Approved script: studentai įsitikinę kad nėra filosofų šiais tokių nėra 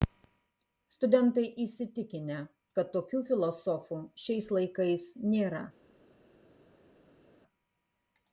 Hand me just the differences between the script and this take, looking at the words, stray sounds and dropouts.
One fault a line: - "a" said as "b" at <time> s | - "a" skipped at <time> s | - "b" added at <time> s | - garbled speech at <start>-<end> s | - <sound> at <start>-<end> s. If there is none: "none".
- "nėra" said as "tokių" at 3.0 s
- "tokių" said as "laikais" at 4.6 s